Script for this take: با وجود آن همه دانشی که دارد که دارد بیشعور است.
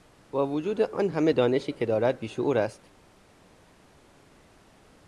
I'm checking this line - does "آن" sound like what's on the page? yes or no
yes